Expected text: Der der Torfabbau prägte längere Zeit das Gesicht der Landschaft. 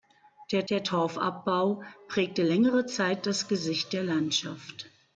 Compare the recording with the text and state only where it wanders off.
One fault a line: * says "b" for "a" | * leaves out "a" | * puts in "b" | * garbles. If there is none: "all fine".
all fine